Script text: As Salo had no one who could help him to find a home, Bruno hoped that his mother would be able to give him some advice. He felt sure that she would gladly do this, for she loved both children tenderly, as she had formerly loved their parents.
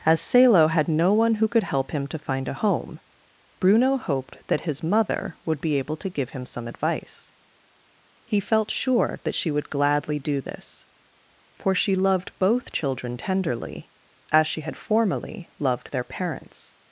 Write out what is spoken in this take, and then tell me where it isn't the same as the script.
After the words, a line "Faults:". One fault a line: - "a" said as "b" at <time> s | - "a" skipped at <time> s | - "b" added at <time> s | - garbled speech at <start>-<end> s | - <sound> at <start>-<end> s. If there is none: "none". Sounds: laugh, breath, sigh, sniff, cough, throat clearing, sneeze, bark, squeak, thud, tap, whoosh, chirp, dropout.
As Salo had no one who could help him to find a home, Bruno hoped that his mother would be able to give him some advice. He felt sure that she would gladly do this, for she loved both children tenderly, as she had formerly loved their parents.
Faults:
none